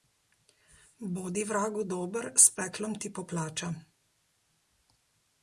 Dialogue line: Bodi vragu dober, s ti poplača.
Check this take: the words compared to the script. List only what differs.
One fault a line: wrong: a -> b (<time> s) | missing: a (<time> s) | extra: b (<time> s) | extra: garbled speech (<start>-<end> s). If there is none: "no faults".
extra: peklom (2.6 s)